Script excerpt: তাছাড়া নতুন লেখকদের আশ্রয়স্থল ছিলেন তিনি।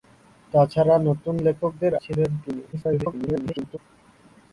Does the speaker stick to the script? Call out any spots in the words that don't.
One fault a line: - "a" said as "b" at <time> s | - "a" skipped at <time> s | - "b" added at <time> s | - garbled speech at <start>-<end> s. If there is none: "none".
- "আশ্রয়স্থল" skipped at 1.9 s
- garbled speech at 2.7-3.8 s